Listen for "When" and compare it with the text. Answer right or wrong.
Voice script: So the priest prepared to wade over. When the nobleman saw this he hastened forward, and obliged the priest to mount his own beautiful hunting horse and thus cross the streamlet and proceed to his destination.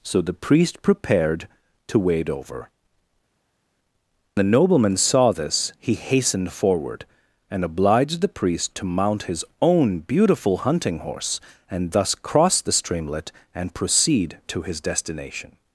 wrong